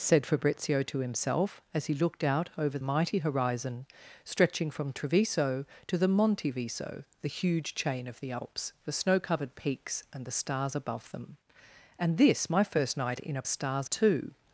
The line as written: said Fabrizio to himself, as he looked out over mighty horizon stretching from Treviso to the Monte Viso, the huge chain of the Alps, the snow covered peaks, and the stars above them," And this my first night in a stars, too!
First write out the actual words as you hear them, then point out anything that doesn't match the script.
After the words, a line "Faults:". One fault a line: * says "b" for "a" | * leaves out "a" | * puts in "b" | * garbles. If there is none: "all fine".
said Fabrizio to himself, as he looked out over mighty horizon stretching from Treviso to the Monte Viso, the huge chain of the Alps, the snow covered peaks, and the stars above them," And this my first night in a stars, too!
Faults:
all fine